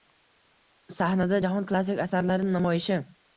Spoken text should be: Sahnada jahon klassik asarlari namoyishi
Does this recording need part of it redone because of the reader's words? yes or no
no